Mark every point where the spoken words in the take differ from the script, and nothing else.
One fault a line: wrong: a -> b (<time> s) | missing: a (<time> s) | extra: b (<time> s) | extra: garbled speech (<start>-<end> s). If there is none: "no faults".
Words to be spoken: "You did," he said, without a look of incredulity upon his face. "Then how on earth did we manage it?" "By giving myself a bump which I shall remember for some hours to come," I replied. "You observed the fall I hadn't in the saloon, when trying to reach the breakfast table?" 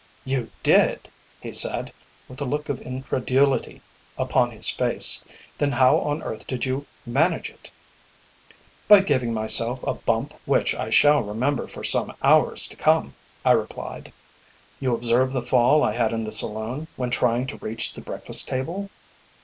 wrong: without -> with (2.3 s)
wrong: we -> you (6.7 s)
wrong: hadn't -> had (15.9 s)